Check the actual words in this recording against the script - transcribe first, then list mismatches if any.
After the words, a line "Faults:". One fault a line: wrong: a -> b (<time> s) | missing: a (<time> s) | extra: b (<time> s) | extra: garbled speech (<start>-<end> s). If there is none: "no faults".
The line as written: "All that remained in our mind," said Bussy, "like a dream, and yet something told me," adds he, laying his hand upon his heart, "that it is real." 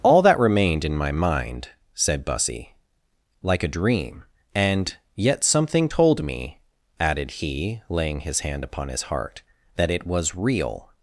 "All that remained in my mind," said Bussy, "like a dream, and yet something told me," added he, laying his hand upon his heart, "that it was real."
Faults:
wrong: our -> my (1.0 s)
wrong: adds -> added (7.0 s)
wrong: is -> was (10.1 s)